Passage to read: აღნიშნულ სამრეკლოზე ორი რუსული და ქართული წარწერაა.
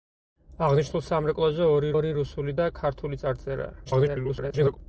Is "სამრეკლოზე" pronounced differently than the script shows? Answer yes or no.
no